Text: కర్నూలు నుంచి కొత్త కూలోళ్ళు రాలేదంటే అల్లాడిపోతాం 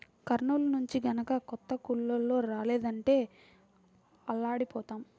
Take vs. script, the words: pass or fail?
fail